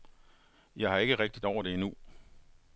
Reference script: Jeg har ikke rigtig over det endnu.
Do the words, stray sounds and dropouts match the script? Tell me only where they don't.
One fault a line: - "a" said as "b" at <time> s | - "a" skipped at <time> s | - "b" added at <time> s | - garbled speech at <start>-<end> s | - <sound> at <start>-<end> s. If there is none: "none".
none